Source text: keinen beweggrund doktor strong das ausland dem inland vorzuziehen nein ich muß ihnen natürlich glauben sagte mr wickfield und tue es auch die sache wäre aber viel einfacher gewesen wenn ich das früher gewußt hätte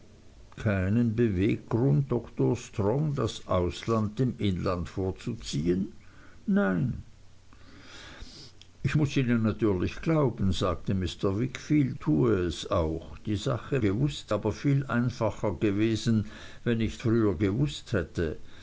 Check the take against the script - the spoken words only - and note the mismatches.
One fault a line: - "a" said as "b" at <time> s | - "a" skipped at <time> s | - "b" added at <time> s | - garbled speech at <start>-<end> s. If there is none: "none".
- "und" skipped at 12.0 s
- "wäre" said as "gewußt" at 13.8 s
- "das" skipped at 17.0 s